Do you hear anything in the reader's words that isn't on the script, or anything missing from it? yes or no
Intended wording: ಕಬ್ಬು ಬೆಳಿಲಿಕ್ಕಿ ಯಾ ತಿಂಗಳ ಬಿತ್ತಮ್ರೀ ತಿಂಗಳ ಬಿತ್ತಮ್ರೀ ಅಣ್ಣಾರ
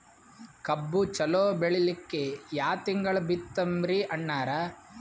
yes